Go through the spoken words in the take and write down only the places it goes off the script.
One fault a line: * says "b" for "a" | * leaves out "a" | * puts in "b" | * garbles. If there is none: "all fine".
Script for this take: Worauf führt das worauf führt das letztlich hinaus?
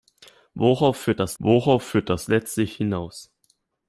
all fine